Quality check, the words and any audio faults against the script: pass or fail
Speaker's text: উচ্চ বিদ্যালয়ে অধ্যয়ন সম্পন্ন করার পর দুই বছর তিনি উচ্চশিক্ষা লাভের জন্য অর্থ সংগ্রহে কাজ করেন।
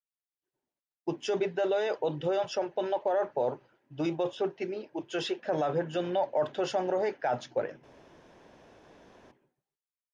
pass